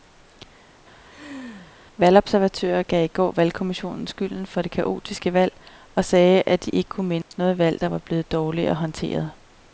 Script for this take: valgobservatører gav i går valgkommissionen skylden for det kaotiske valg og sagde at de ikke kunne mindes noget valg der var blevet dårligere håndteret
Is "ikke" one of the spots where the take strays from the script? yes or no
no